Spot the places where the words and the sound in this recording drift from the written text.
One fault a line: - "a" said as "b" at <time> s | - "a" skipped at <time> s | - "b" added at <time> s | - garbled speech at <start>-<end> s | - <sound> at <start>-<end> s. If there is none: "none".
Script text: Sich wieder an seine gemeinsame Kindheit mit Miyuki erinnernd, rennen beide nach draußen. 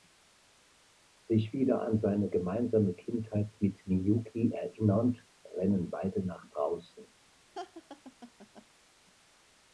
- laugh at 7.5-8.7 s